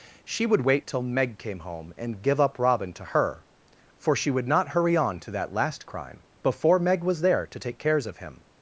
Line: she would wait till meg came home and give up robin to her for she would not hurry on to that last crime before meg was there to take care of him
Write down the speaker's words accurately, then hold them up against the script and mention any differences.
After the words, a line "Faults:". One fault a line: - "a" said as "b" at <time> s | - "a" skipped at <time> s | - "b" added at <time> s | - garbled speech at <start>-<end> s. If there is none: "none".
she would wait till meg came home and give up robin to her for she would not hurry on to that last crime before meg was there to take cares of him
Faults:
- "care" said as "cares" at 7.8 s